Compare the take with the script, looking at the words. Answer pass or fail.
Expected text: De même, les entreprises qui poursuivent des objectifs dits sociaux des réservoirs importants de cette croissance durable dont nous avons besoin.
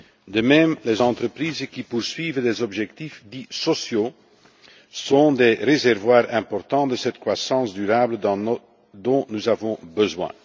fail